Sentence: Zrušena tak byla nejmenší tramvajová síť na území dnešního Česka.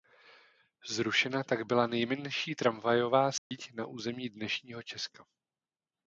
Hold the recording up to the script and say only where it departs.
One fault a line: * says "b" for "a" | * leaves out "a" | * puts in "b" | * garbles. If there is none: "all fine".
all fine